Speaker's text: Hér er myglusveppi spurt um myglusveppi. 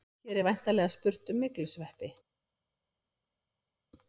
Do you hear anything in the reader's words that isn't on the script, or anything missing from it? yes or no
yes